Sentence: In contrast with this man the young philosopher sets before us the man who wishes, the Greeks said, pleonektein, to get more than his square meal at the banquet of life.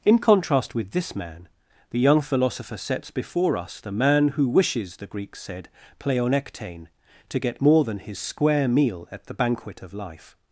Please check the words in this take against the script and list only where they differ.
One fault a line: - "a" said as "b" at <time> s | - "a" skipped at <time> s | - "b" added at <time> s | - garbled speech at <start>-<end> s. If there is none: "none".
none